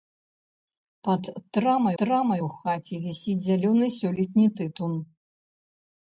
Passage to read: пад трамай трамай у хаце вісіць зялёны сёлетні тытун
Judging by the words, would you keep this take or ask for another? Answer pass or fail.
pass